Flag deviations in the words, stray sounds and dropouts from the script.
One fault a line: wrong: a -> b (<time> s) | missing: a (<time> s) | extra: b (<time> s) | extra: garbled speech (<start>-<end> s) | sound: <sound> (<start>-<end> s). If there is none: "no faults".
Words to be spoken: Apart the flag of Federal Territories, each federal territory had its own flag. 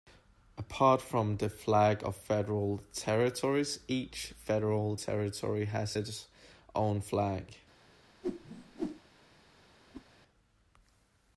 extra: from (1.0 s)
wrong: had -> has (5.6 s)
sound: whoosh (8.2-9.0 s)
sound: whoosh (9.9-10.1 s)